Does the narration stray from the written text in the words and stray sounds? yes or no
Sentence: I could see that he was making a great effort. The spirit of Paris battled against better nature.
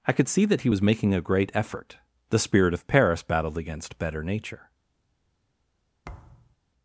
yes